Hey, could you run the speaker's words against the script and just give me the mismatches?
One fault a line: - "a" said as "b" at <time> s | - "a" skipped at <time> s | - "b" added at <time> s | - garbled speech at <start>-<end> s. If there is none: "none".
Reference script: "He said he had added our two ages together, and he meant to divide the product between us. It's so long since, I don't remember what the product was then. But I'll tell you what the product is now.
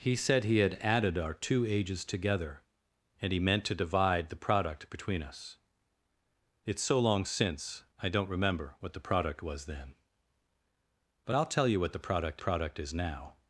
- "product" added at 12.4 s